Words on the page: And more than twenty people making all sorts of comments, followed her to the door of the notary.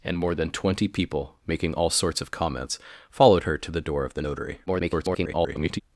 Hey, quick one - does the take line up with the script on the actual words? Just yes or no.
no